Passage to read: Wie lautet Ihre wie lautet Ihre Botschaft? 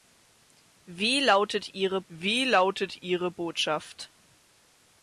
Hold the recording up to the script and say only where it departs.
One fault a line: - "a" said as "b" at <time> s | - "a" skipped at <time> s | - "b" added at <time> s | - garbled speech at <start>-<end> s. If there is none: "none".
none